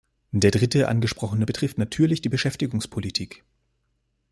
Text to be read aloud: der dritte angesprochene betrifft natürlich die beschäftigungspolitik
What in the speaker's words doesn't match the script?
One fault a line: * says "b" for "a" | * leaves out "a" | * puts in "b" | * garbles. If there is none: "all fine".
all fine